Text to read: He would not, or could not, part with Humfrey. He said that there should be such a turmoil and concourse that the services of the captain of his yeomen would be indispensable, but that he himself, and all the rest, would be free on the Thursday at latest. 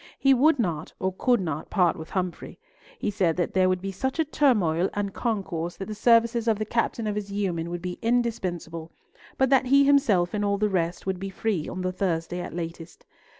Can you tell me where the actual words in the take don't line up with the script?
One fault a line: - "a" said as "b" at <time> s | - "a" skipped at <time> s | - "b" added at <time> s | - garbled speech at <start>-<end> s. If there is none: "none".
- "should" said as "would" at 3.7 s